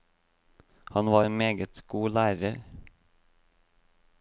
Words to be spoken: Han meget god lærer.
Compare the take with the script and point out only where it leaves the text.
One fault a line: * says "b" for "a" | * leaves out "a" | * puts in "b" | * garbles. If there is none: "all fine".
* puts in "var en"